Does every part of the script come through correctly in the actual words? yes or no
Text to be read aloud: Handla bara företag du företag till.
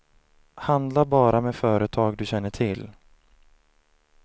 no